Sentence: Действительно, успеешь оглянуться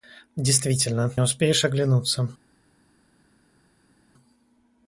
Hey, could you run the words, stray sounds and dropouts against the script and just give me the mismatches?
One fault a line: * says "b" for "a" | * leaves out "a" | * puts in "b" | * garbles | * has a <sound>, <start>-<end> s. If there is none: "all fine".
all fine